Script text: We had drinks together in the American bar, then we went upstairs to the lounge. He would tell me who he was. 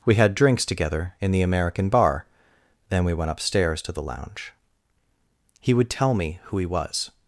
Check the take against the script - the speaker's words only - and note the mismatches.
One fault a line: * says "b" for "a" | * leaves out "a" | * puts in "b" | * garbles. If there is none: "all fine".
all fine